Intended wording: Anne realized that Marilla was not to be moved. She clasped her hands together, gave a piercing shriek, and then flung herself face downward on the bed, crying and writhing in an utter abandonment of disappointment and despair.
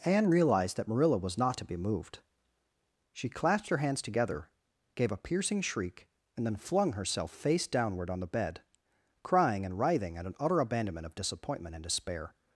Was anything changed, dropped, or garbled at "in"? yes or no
yes